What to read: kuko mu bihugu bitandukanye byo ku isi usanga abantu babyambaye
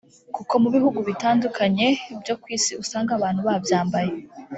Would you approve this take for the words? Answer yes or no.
yes